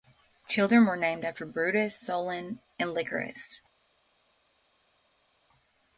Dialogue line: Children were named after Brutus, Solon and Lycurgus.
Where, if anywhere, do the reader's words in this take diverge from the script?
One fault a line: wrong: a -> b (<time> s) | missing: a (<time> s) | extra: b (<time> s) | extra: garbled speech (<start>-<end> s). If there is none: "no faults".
no faults